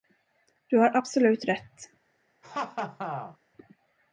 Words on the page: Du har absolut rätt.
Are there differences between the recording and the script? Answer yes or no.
no